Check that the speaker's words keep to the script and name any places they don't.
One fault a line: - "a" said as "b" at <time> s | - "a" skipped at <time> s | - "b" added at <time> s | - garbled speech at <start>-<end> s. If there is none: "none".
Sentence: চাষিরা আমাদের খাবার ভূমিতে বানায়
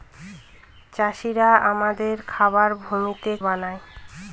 none